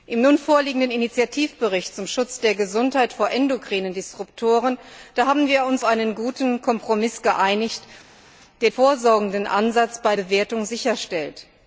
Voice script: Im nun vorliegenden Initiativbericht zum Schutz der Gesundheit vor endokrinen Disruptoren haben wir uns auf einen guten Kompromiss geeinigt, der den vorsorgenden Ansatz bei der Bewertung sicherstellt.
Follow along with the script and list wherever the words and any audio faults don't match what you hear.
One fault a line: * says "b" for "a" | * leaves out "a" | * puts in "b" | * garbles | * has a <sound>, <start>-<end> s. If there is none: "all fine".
* leaves out "auf"
* leaves out "den"
* leaves out "der"